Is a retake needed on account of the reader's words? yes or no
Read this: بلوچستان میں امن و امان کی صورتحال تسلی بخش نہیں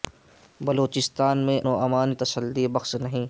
yes